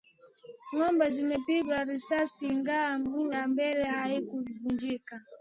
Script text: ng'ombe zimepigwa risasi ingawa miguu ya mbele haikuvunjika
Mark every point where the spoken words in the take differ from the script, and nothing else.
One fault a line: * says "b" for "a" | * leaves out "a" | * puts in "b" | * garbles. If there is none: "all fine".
all fine